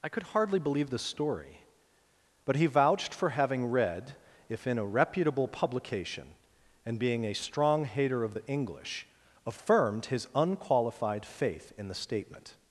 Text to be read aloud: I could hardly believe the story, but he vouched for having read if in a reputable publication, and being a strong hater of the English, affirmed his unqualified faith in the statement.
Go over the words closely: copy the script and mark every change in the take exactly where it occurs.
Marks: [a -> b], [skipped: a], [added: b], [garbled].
I could hardly believe the story, but he vouched for having read if in a reputable publication, and being a strong hater of the English, affirmed his unqualified faith in the statement.